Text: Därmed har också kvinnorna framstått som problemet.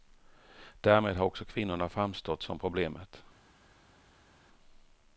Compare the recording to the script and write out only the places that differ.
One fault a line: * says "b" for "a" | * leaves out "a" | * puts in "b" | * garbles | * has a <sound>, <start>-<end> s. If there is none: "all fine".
all fine